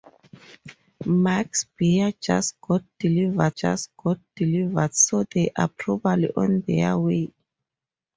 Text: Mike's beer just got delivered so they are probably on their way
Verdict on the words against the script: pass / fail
fail